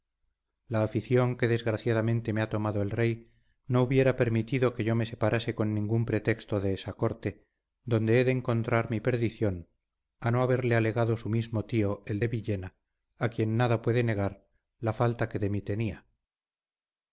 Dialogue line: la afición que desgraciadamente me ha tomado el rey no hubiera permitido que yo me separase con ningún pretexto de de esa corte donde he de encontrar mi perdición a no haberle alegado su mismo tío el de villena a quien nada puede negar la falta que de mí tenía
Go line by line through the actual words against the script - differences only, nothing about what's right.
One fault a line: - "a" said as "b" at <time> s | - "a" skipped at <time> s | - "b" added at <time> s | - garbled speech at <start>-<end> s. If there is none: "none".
- "de" skipped at 6.7 s